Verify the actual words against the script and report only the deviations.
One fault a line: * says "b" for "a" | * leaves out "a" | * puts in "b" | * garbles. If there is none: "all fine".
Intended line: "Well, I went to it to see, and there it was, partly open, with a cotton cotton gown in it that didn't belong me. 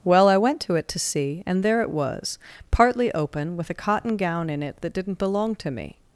* leaves out "cotton"
* puts in "to"